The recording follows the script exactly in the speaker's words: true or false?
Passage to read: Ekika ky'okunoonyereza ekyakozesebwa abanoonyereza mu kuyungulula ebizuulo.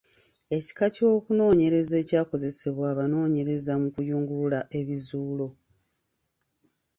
true